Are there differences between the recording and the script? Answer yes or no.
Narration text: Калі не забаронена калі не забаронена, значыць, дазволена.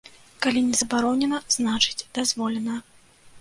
yes